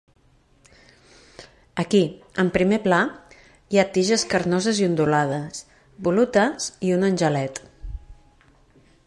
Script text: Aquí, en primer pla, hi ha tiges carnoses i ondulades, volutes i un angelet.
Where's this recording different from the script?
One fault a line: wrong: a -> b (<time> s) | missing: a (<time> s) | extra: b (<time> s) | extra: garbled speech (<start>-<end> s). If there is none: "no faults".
no faults